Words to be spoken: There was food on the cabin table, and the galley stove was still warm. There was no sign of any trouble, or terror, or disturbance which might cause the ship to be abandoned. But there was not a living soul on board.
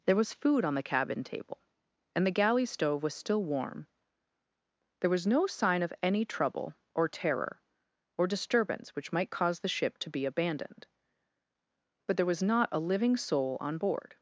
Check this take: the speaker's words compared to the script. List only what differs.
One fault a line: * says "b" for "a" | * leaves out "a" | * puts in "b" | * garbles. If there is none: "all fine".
all fine